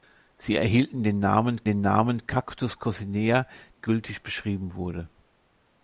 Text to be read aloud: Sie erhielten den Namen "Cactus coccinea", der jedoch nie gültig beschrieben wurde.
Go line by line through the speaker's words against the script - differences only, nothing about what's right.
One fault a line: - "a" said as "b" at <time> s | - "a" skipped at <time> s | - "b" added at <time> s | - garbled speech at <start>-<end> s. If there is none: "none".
- "den Namen" added at 1.6 s
- "der jedoch nie" skipped at 3.5 s